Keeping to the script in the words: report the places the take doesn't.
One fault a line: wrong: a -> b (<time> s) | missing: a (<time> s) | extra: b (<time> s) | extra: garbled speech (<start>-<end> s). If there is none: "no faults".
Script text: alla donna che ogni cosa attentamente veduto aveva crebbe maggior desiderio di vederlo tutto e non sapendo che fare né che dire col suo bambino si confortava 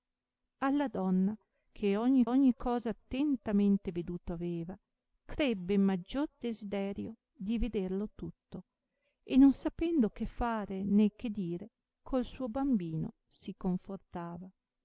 extra: ogni (2.2 s)